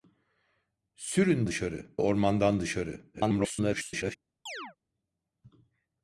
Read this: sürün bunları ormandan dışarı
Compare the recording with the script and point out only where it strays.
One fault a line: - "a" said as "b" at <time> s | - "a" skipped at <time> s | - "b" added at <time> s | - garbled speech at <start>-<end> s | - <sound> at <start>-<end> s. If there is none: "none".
- "bunları" said as "dışarı" at 1.5 s
- garbled speech at 3.1-4.2 s
- chirp at 4.5-4.8 s